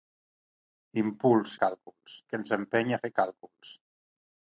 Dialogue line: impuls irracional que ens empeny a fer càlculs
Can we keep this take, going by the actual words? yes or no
no